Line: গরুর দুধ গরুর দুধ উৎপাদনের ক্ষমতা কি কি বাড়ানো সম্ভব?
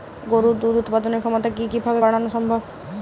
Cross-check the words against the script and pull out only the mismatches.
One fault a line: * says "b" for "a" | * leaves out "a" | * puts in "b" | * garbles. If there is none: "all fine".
* leaves out "গরুর দুধ"
* puts in "ভাবে"